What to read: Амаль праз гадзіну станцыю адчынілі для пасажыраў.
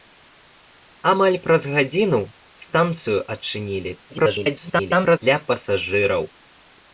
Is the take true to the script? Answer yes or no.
no